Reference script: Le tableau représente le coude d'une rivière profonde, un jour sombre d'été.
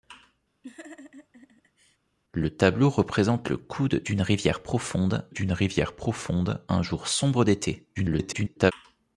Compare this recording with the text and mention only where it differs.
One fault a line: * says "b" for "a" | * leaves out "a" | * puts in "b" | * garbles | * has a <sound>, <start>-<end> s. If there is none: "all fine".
* has a laugh, 0.6-2.0 s
* puts in "d'une rivière profonde"
* garbles